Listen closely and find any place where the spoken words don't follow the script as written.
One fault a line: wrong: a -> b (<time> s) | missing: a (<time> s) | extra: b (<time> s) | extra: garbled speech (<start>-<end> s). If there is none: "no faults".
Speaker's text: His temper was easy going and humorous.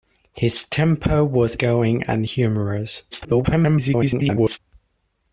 missing: easy (1.6 s)
extra: garbled speech (3.1-4.6 s)